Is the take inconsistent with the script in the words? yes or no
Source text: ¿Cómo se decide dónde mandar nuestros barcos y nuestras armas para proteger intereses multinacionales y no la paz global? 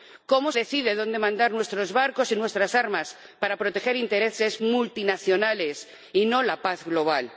yes